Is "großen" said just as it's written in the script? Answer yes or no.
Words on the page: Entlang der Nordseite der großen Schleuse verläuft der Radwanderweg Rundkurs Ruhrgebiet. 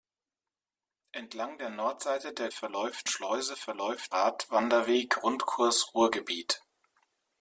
no